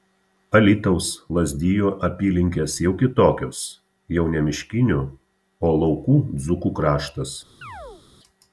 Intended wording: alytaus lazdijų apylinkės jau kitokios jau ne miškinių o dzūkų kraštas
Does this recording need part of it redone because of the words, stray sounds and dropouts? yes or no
yes